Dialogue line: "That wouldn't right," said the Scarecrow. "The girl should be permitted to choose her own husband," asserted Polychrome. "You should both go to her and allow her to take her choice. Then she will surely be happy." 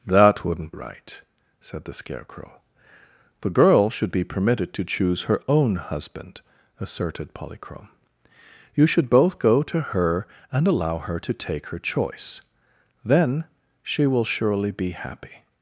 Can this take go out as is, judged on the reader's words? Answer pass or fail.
pass